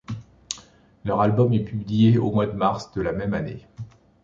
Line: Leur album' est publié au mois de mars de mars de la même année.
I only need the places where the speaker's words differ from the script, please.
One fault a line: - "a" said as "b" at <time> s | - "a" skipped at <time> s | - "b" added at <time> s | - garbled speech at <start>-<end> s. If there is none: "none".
- "mars de" skipped at 3.0 s